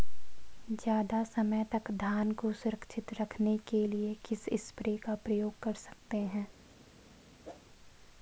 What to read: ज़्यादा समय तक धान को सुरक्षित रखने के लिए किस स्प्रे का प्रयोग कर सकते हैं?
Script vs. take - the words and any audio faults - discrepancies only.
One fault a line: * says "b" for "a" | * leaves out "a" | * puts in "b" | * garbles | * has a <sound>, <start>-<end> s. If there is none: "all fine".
* has a whoosh, 7.4-7.6 s